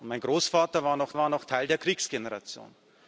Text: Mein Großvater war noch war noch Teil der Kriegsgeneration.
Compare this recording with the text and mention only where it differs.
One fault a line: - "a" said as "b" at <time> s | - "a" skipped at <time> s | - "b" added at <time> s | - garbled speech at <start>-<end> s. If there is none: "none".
none